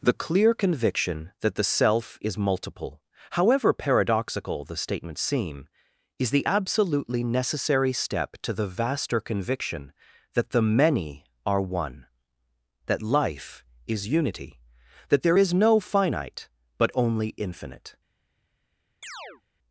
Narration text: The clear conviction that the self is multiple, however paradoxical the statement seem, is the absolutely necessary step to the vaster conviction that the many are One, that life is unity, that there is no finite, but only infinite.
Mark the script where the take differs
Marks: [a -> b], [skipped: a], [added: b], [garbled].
The clear conviction that the self is multiple, however paradoxical the statement seem, is the absolutely necessary step to the vaster conviction that the many are One, that life is unity, that there is no finite, but only infinite.